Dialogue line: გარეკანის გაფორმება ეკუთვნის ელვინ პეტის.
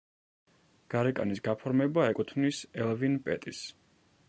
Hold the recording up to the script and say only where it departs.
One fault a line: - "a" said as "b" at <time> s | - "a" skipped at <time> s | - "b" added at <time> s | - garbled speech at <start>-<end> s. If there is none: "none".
none